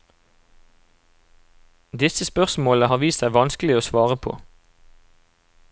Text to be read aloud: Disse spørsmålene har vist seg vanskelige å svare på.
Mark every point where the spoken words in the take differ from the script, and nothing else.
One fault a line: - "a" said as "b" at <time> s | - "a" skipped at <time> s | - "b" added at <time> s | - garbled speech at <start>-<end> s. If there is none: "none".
none